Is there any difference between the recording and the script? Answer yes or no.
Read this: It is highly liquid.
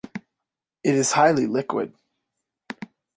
no